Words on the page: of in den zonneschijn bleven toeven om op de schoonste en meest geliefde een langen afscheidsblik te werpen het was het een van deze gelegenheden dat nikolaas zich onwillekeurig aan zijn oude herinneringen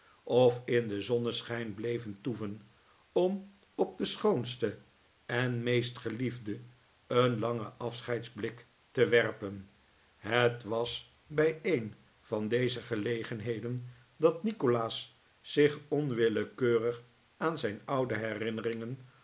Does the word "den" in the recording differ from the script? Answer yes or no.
no